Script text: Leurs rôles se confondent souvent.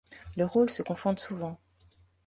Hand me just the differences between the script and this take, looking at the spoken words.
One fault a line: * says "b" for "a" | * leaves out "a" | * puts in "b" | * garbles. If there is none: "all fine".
all fine